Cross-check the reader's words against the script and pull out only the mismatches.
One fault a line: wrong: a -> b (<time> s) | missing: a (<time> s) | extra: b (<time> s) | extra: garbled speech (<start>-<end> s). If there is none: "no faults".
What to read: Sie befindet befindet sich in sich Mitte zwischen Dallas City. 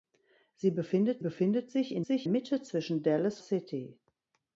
no faults